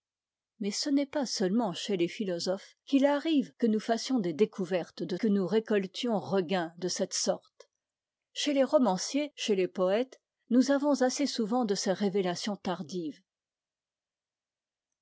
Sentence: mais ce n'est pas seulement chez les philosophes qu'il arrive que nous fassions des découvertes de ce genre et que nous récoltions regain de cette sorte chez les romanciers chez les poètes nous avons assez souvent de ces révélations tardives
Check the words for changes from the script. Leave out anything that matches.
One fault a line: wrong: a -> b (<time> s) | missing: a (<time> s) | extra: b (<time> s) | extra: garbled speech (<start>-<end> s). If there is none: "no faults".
missing: ce genre et (5.2 s)